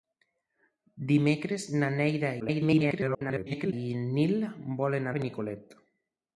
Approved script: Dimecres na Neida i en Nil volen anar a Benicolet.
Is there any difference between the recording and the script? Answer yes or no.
yes